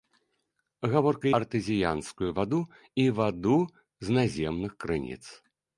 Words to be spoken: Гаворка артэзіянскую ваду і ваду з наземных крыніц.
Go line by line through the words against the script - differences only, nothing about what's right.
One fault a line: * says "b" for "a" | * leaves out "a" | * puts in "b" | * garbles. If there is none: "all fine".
all fine